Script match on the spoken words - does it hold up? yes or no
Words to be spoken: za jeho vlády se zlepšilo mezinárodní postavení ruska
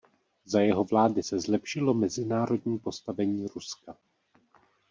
yes